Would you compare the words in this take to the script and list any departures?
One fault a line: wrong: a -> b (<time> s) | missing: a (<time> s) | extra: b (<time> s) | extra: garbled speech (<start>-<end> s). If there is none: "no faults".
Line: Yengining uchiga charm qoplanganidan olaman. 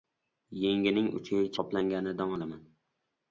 missing: charm (1.5 s)